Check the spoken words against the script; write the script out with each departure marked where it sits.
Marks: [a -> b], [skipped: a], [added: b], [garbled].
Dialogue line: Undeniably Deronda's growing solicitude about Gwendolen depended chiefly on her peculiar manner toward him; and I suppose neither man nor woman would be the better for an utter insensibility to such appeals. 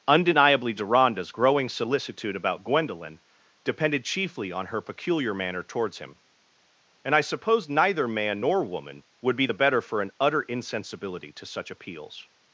Undeniably Deronda's growing solicitude about Gwendolen depended chiefly on her peculiar manner [toward -> towards] him; and I suppose neither man nor woman would be the better for an utter insensibility to such appeals.